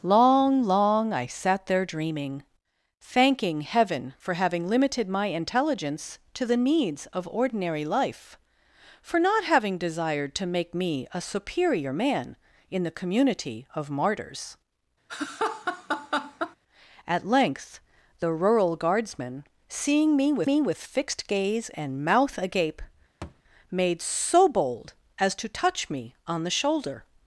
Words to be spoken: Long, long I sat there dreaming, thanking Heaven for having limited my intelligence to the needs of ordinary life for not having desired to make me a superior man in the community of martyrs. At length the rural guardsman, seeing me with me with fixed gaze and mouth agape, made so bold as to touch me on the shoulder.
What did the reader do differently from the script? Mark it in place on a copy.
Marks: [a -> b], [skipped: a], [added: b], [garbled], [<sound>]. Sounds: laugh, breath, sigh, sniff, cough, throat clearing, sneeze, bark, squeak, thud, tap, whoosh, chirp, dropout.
Long, long I sat there dreaming, thanking Heaven for having limited my intelligence to the needs of ordinary life for not having desired to make me a superior man in the community of martyrs. [laugh] At length the rural guardsman, seeing me with me with fixed gaze and mouth agape, [thud] made so bold as to touch me on the shoulder.